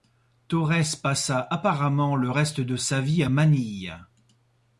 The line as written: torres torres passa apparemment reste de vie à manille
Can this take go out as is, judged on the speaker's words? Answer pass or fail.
fail